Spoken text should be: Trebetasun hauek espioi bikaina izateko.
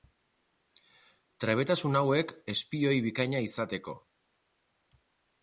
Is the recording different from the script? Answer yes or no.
no